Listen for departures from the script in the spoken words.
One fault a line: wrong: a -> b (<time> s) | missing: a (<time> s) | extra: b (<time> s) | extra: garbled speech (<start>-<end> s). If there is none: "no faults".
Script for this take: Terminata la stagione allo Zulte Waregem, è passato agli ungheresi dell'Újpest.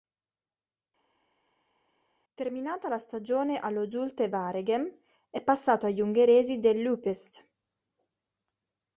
no faults